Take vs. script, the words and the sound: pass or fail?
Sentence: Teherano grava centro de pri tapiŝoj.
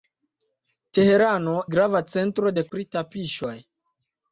pass